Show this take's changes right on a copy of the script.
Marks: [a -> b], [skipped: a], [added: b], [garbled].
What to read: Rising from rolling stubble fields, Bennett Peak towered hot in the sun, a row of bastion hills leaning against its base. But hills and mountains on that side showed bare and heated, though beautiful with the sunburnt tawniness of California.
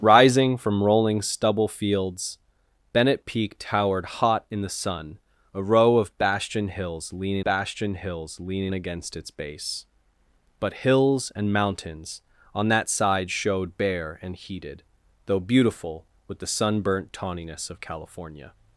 Rising from rolling stubble fields, Bennett Peak towered hot in the sun, a row of bastion hills leaning [added: bastion hills leaning] against its base. But hills and mountains on that side showed bare and heated, though beautiful with the sunburnt tawniness of California.